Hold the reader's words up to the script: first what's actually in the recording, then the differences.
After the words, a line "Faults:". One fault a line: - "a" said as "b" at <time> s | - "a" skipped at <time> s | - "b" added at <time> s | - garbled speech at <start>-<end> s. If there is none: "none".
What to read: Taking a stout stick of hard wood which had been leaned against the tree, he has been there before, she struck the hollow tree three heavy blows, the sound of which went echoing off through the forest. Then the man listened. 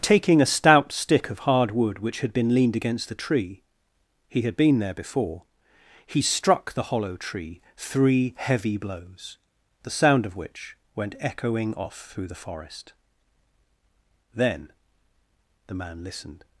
Taking a stout stick of hard wood which had been leaned against the tree, he had been there before, he struck the hollow tree three heavy blows, the sound of which went echoing off through the forest. Then the man listened.
Faults:
- "has" said as "had" at 4.4 s
- "she" said as "he" at 6.0 s